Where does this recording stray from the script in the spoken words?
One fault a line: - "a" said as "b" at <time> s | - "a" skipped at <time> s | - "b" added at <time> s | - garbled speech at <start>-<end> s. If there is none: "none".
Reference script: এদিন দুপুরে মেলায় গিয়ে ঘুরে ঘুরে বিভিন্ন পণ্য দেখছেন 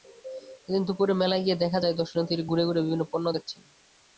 - "দেখা যায় দর্শনার্থীরা" added at 1.6 s